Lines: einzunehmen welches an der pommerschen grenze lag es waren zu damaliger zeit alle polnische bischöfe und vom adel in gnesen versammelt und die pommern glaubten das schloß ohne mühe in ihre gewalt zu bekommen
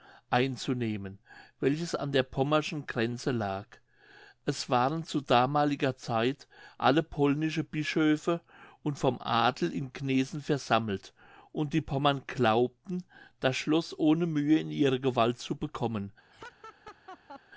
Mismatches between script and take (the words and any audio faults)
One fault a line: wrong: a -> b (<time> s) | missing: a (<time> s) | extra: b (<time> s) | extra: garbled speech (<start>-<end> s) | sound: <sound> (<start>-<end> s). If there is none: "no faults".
sound: laugh (16.3-17.4 s)